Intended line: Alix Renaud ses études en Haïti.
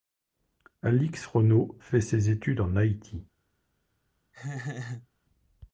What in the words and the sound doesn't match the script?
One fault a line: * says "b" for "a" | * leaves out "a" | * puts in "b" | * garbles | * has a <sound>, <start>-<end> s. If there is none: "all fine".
* puts in "fait"
* has a laugh, 4.3-5.1 s